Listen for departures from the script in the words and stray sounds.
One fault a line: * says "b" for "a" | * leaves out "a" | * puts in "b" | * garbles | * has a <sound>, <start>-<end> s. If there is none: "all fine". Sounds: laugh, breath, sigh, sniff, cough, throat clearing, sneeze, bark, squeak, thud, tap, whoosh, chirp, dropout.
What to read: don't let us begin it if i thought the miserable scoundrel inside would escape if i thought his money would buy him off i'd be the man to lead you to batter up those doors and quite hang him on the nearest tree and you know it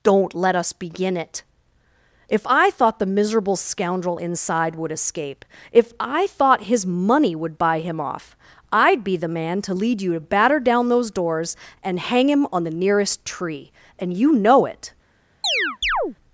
* says "down" for "up"
* leaves out "quite"
* has a chirp, 15.4-16.2 s